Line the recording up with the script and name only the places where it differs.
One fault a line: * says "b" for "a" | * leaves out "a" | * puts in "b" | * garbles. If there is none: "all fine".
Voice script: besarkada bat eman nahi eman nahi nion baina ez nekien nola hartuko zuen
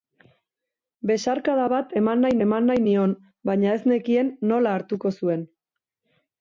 all fine